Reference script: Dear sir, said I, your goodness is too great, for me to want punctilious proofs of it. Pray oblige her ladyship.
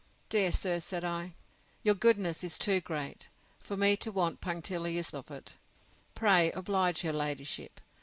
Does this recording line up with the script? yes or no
no